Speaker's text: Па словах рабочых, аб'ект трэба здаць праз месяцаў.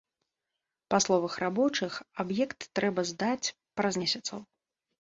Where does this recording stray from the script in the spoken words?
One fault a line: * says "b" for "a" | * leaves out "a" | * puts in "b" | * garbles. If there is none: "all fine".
all fine